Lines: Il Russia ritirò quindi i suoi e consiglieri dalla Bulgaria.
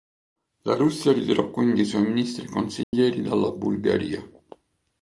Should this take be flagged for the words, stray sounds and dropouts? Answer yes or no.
yes